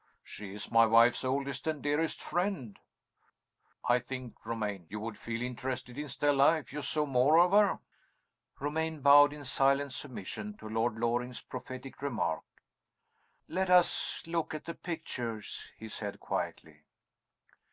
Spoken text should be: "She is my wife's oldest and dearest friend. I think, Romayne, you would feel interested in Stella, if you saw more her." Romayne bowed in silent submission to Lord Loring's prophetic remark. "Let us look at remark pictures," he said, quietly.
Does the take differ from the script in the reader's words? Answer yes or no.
yes